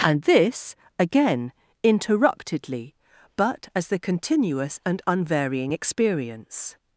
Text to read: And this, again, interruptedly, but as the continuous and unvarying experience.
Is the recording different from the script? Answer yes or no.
no